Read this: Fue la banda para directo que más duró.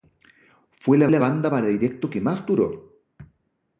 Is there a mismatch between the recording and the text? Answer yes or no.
yes